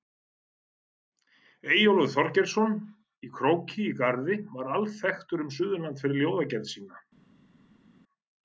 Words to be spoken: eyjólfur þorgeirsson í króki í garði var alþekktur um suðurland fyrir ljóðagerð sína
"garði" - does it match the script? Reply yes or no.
yes